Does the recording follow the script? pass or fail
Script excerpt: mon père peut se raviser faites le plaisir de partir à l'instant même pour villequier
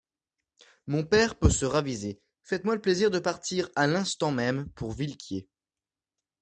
fail